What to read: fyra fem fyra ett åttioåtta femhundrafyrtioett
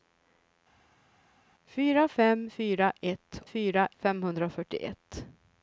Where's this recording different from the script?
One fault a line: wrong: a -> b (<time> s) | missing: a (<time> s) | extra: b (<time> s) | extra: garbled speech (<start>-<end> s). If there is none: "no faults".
wrong: åttioåtta -> fyra (3.5 s)